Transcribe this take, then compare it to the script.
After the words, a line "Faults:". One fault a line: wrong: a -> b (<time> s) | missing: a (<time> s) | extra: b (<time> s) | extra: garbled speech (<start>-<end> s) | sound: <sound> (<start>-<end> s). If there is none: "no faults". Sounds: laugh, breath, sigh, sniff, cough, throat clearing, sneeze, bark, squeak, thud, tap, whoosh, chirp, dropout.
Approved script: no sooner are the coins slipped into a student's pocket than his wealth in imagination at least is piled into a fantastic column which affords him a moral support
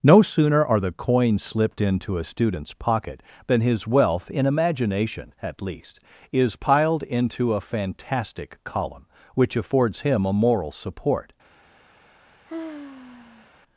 no sooner are the coins slipped into a student's pocket than his wealth in imagination at least is piled into a fantastic column which affords him a moral support
Faults:
sound: sigh (12.5-13.6 s)